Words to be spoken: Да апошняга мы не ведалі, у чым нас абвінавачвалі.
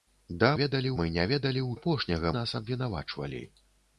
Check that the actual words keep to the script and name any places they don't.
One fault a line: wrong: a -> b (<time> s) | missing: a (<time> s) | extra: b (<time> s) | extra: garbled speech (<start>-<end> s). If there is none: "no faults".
wrong: апошняга -> ведалі (0.6 s)
wrong: чым -> апошняга (1.8 s)